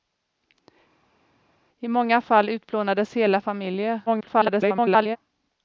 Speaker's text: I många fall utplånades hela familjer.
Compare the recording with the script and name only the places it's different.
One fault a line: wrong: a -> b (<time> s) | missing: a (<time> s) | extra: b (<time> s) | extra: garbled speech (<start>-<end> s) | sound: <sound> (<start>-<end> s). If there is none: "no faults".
extra: garbled speech (4.1-5.2 s)